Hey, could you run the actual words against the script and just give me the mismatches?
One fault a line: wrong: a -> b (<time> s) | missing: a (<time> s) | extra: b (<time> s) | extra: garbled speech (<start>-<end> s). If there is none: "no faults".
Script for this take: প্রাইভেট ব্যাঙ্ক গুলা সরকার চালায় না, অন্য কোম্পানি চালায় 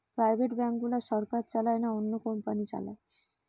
no faults